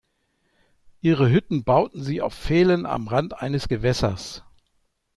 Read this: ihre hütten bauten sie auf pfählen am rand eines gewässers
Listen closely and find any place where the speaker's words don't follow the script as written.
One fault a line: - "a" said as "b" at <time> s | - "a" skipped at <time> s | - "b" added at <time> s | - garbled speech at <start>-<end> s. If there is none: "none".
none